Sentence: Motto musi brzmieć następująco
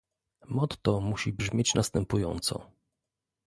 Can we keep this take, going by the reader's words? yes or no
yes